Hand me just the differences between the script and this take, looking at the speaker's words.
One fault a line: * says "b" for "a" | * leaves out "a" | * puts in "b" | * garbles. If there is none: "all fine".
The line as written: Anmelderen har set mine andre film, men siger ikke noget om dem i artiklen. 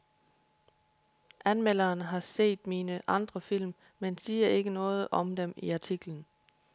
all fine